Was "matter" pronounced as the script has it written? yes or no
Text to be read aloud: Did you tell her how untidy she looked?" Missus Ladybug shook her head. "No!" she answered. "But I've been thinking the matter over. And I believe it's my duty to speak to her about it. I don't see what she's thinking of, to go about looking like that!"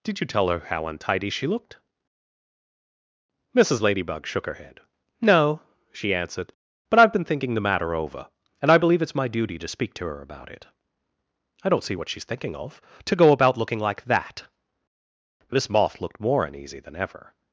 yes